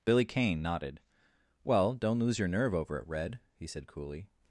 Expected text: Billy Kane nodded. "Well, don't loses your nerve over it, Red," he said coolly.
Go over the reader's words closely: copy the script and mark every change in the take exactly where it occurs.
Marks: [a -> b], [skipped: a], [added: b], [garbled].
Billy Kane nodded. "Well, don't [loses -> lose] your nerve over it, Red," he said coolly.